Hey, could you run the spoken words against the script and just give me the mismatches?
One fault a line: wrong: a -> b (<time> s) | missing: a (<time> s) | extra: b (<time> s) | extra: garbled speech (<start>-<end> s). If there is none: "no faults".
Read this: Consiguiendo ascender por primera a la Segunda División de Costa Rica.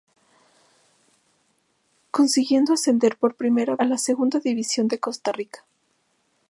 no faults